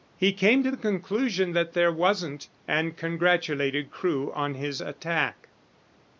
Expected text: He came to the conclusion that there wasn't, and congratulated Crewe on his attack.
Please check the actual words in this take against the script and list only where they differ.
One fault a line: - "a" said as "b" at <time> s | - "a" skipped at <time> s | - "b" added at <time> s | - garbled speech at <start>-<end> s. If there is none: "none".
none